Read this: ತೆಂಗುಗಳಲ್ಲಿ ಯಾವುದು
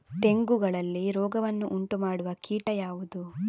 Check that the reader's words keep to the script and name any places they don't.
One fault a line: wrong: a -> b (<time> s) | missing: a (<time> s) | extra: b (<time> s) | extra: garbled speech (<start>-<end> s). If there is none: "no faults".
extra: ರೋಗವನ್ನು ಉಂಟುಮಾಡುವ ಕೀಟ (1.1 s)